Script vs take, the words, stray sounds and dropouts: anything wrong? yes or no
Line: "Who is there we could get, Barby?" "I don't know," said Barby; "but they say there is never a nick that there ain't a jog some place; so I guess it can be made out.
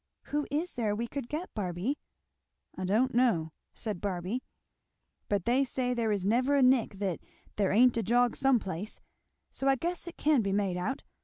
no